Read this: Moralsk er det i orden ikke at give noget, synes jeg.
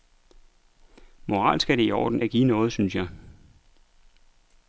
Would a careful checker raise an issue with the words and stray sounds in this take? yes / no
yes